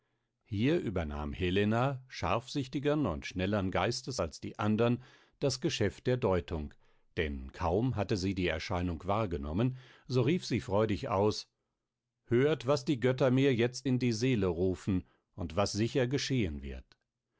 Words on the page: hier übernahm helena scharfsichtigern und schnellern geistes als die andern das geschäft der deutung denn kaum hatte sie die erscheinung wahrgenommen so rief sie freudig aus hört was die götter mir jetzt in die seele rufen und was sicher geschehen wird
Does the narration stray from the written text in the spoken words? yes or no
no